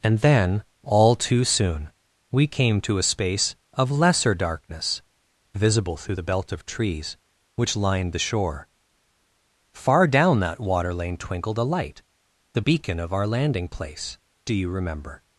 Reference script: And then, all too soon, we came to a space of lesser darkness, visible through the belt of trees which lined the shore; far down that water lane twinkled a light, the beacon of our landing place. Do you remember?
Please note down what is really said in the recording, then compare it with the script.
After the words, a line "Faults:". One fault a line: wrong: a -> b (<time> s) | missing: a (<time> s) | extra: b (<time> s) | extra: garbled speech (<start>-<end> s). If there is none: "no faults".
And then, all too soon, we came to a space of lesser darkness, visible through the belt of trees which lined the shore; far down that water lane twinkled a light, the beacon of our landing place. Do you remember?
Faults:
no faults